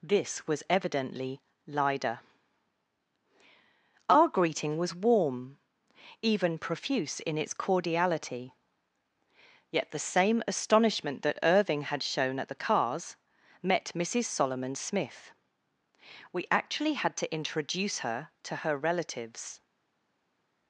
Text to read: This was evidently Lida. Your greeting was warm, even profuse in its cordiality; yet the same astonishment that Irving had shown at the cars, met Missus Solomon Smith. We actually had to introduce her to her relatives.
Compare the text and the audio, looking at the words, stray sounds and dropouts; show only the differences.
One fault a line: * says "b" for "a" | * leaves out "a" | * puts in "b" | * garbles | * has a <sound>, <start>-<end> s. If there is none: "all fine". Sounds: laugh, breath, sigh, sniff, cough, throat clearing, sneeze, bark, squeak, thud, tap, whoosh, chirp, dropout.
* says "Our" for "Your"